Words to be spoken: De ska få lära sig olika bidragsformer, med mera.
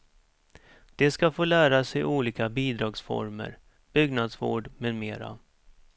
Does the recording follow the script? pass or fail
fail